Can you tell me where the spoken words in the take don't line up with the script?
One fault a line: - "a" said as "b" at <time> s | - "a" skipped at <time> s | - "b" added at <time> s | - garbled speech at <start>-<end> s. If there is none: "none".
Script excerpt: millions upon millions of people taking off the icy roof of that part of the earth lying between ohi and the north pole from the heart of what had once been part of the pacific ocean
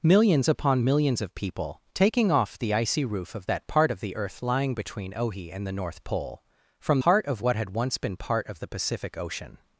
- "the" skipped at 7.0 s